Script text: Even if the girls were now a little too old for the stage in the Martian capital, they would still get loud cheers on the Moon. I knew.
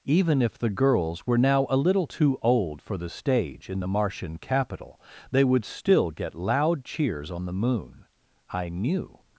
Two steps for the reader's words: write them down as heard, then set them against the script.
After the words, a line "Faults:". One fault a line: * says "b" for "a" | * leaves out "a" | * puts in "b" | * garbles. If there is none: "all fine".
Even if the girls were now a little too old for the stage in the Martian capital, they would still get loud cheers on the Moon. I knew.
Faults:
all fine